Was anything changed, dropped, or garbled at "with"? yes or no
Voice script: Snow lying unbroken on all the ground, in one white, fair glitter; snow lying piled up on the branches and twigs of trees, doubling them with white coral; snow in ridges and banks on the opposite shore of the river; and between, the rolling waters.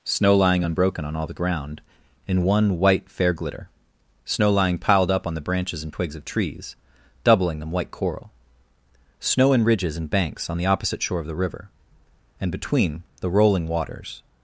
yes